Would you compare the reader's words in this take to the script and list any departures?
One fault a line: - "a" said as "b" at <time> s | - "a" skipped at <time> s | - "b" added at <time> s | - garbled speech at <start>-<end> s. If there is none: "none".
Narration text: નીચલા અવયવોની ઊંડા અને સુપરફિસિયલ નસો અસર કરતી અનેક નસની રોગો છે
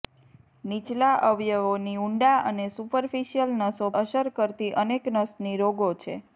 none